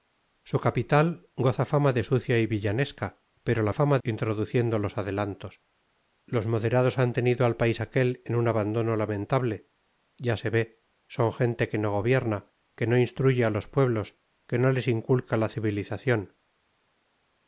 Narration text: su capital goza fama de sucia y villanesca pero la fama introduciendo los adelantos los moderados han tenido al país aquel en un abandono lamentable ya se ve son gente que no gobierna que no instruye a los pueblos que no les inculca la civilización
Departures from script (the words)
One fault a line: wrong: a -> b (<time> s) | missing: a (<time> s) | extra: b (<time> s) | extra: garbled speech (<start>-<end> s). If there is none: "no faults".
no faults